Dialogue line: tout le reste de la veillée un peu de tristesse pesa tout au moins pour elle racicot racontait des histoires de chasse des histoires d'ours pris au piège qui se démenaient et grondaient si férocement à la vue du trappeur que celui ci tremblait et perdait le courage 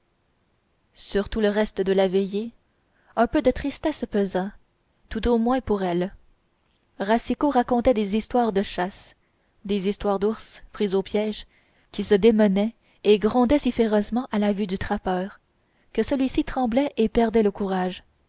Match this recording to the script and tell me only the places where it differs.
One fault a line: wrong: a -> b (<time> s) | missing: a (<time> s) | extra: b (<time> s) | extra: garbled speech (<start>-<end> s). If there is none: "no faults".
no faults